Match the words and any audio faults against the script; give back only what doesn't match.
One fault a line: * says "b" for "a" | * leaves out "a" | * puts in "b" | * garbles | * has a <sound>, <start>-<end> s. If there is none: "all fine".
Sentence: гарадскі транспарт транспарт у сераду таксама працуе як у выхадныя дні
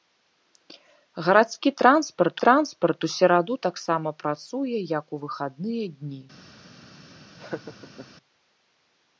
* has a laugh, 7.4-8.1 s